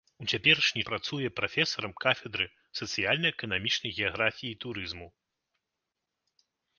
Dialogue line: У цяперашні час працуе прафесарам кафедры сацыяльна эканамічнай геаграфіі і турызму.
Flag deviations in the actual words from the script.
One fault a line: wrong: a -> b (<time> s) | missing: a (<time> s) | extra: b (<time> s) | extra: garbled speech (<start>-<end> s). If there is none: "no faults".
missing: час (0.8 s)